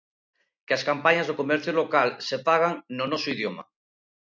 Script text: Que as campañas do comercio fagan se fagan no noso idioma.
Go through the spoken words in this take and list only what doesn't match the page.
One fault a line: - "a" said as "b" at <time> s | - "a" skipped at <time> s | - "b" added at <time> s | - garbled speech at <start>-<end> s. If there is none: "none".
- "fagan" said as "local" at 1.8 s